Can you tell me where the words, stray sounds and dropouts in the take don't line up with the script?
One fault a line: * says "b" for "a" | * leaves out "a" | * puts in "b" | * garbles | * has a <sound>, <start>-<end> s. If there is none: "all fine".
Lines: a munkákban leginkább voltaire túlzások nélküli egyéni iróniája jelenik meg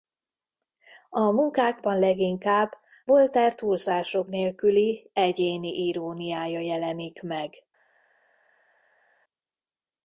all fine